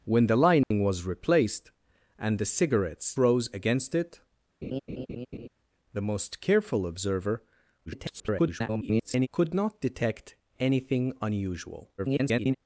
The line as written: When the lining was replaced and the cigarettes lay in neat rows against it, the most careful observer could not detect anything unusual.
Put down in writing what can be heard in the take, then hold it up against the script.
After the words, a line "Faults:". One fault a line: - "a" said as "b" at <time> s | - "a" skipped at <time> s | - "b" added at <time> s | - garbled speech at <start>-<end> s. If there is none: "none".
When the lining was replaced and the cigarettes rows against it, the most careful observer [garbled] could not detect anything unusual. [garbled]
Faults:
- "lay in neat" skipped at 3.2 s
- garbled speech at 7.9-9.3 s
- garbled speech at 12.0-12.6 s